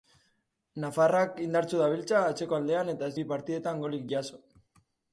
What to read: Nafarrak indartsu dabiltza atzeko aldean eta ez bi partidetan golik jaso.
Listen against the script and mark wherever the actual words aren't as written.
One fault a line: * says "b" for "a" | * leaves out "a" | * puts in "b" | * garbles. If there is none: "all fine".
all fine